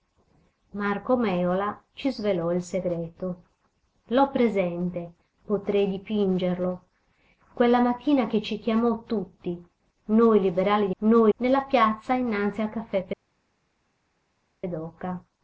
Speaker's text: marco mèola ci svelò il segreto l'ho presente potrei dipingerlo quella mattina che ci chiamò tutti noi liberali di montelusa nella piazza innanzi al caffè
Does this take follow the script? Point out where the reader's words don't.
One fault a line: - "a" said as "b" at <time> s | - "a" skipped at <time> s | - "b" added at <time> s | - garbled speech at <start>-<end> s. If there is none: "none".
- "montelusa" said as "noi" at 11.0 s